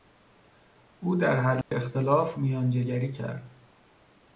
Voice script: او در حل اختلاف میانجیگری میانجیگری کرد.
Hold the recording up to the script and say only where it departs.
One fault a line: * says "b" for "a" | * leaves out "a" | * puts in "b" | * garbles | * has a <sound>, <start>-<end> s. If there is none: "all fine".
* has a dropout, 1.6-1.7 s
* leaves out "میانجیگری"